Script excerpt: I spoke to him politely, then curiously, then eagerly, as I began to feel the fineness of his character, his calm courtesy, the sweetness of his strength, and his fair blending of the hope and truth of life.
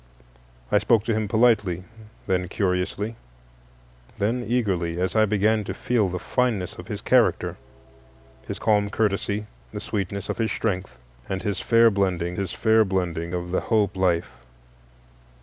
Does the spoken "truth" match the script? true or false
false